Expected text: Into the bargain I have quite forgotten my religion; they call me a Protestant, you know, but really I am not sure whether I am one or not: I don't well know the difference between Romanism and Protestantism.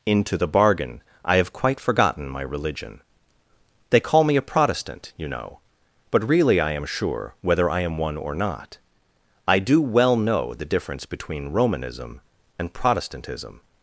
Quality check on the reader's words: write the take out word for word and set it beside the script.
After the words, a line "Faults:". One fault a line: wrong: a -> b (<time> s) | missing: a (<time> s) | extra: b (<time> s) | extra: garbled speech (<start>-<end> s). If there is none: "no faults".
Into the bargain I have quite forgotten my religion; they call me a Protestant, you know, but really I am sure whether I am one or not: I do well know the difference between Romanism and Protestantism.
Faults:
missing: not (6.8 s)
wrong: don't -> do (9.6 s)